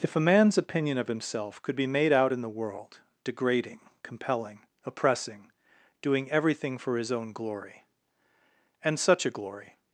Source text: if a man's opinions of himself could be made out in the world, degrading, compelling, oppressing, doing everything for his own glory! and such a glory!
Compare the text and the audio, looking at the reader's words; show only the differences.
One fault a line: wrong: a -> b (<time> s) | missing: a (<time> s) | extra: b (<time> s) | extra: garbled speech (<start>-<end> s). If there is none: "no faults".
wrong: opinions -> opinion (0.6 s)